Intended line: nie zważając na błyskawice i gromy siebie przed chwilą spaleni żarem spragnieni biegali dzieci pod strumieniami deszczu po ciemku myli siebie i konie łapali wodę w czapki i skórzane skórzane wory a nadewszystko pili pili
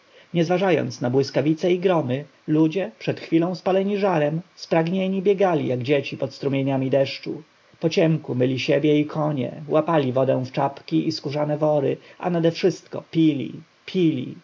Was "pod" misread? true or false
false